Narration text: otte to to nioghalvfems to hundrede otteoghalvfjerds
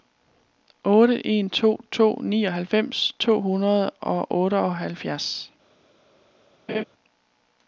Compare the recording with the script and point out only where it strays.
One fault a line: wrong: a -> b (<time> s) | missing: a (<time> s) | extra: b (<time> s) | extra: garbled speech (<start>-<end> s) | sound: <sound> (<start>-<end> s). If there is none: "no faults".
extra: en (1.3 s)
extra: og (4.0 s)
sound: laugh (6.7-6.8 s)